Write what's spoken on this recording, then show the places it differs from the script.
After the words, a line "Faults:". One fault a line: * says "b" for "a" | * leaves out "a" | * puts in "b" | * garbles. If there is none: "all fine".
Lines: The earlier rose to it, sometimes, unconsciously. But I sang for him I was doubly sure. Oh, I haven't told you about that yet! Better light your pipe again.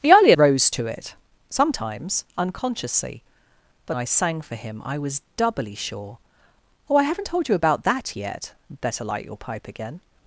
The earlier rose to it, sometimes, unconsciously. But I sang for him I was doubly sure. Oh, I haven't told you about that yet! Better light your pipe again.
Faults:
all fine